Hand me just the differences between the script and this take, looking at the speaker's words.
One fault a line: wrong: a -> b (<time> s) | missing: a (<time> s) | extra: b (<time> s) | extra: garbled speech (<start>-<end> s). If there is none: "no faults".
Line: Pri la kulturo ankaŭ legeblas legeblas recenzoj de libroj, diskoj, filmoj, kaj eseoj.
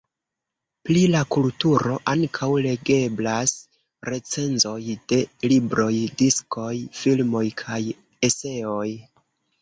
missing: legeblas (3.5 s)